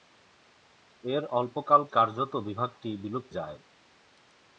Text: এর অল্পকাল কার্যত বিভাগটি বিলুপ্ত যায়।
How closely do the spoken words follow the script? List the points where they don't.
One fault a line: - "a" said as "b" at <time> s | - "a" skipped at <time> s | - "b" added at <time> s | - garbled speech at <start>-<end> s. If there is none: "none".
none